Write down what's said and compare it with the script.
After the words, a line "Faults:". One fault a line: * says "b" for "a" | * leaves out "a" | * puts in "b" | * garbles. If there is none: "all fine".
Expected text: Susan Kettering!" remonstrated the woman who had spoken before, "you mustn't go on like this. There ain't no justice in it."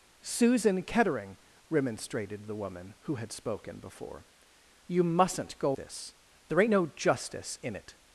Susan Kettering!" remonstrated the woman who had spoken before, "you mustn't go this. There ain't no justice in it."
Faults:
* leaves out "on like"